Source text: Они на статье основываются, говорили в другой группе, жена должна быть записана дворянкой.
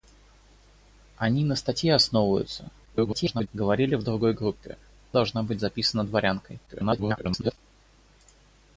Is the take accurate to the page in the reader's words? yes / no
no